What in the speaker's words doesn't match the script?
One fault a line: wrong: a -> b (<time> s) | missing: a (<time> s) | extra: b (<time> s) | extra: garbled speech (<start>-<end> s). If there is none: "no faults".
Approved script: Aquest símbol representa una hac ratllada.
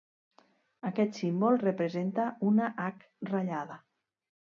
no faults